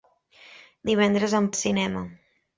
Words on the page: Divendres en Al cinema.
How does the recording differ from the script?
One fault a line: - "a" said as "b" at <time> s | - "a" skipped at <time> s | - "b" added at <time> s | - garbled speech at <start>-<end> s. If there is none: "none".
none